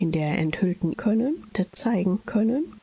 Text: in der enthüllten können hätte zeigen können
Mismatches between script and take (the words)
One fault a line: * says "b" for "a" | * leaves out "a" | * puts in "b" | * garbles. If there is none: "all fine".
all fine